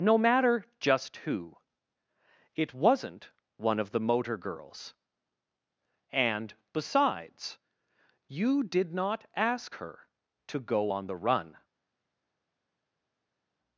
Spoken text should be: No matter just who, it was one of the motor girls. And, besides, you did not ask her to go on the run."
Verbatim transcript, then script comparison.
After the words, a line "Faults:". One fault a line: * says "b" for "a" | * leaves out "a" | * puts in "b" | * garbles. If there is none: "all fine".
No matter just who, it wasn't one of the motor girls. And, besides, you did not ask her to go on the run."
Faults:
* says "wasn't" for "was"